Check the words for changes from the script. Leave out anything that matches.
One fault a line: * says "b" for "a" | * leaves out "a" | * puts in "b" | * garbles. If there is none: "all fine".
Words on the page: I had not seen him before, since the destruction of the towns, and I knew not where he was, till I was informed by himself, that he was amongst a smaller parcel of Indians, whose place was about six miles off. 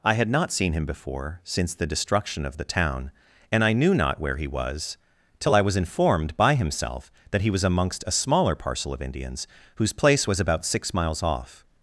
* says "town" for "towns"